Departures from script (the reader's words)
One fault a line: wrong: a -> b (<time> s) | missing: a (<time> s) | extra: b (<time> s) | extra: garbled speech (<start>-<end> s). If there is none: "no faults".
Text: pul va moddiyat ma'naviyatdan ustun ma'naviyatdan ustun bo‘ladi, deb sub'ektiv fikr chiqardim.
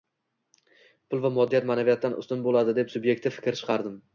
missing: ma'naviyatdan ustun (2.5 s)